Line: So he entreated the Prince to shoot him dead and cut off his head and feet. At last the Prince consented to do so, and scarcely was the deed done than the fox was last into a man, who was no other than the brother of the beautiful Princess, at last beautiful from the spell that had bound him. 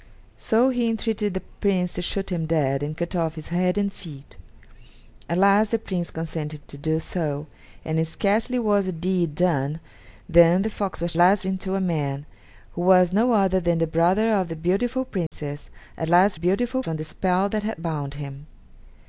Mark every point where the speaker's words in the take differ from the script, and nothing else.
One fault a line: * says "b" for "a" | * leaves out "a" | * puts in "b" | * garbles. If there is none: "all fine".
all fine